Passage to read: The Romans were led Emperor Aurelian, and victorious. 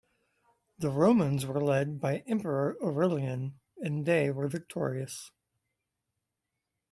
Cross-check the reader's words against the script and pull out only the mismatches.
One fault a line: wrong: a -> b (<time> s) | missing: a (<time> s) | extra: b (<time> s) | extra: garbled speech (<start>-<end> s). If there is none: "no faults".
extra: by (2.0 s)
extra: they were (4.1 s)